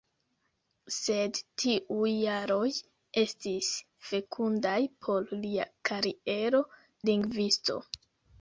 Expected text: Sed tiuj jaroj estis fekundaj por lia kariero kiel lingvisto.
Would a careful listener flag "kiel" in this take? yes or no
yes